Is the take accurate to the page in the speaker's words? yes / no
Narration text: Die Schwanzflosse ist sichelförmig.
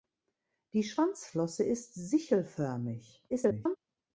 no